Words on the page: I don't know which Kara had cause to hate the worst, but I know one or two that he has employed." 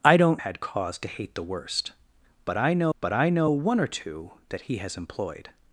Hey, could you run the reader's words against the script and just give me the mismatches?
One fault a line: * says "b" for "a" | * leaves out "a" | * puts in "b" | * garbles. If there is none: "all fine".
* leaves out "know which Kara"
* puts in "but I know"